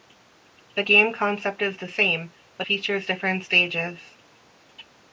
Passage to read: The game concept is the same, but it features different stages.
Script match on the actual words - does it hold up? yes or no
no